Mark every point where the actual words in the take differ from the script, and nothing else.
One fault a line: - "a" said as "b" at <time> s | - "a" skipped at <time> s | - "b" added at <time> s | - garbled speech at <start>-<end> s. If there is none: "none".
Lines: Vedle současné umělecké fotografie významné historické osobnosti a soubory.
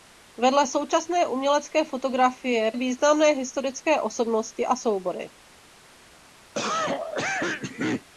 none